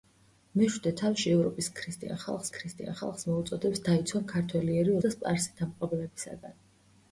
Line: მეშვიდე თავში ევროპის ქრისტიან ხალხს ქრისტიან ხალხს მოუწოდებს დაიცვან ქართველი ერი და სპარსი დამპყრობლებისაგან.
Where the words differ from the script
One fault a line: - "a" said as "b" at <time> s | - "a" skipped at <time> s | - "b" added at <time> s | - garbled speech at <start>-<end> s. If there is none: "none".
none